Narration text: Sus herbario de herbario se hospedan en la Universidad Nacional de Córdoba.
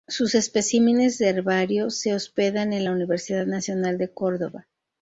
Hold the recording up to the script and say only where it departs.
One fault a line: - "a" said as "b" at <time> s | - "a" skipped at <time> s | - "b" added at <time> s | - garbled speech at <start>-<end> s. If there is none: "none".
- "herbario" said as "especímenes" at 0.3 s